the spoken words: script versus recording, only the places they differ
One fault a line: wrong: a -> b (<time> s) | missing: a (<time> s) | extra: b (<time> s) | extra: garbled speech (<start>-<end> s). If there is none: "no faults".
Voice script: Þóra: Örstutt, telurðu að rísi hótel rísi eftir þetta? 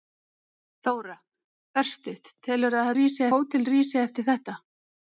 no faults